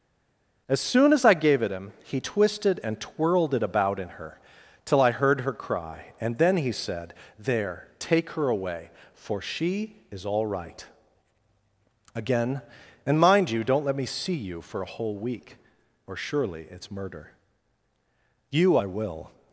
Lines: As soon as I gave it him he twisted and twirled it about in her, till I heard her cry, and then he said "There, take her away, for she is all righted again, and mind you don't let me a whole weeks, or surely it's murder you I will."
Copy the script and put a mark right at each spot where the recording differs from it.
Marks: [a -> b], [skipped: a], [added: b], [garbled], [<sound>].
As soon as I gave it him he twisted and twirled it about in her, till I heard her cry, and then he said "There, take her away, for she is all [righted -> right] again, and mind you don't let me [added: see you for] a whole [weeks, -> week] or surely it's murder you I will."